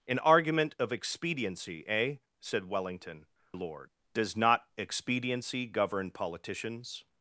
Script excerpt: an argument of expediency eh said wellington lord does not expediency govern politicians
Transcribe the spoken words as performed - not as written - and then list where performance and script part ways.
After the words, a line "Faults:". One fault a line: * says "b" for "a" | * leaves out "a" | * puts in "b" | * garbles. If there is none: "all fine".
an argument of expediency eh said wellington lord does not expediency govern politicians
Faults:
all fine